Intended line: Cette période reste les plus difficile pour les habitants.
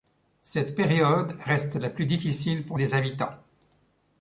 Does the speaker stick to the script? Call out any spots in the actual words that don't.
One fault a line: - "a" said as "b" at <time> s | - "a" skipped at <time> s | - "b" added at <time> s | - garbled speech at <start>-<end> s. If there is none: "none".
- "les" said as "la" at 1.8 s